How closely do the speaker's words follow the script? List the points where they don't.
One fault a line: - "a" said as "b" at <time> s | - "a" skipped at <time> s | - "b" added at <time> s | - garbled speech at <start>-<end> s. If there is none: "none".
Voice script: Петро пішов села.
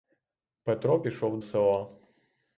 none